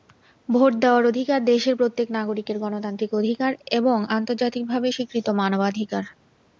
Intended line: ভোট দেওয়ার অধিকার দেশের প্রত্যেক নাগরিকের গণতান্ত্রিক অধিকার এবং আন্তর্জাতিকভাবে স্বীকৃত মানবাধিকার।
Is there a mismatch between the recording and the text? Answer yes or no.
no